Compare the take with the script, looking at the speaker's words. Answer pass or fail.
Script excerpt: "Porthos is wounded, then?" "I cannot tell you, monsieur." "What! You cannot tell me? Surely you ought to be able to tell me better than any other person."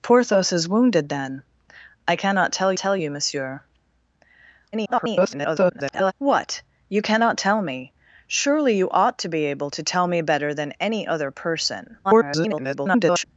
fail